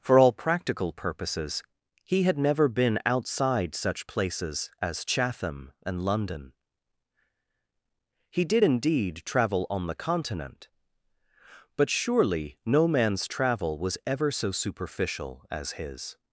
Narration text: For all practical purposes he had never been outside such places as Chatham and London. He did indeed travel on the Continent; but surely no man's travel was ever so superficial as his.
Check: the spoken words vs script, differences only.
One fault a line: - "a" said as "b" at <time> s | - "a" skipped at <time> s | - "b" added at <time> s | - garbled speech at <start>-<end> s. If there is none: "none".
none